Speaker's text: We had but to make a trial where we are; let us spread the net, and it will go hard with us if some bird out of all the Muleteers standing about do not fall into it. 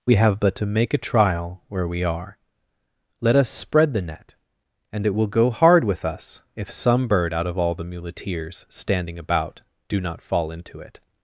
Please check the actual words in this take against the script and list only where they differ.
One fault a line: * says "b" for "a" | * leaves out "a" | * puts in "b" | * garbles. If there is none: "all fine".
* says "have" for "had"